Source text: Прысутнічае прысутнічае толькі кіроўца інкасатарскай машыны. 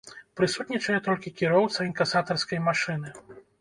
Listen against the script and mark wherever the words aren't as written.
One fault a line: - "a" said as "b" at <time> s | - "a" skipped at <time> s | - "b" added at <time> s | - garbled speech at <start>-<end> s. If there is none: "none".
- "прысутнічае" skipped at 0.9 s